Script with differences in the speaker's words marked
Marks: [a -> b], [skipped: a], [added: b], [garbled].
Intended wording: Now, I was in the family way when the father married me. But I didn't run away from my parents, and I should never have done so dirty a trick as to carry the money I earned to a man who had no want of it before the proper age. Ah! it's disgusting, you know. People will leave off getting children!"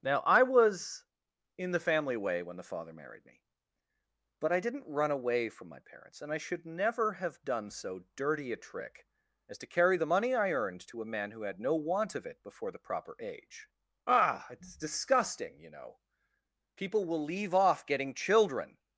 Now, I was in the family way when the father married me. But I didn't run away from my parents, and I should never have done so dirty a trick as to carry the money I earned to a man who had no want of it before the proper age. Ah! it's disgusting, you know. People will leave off getting children!"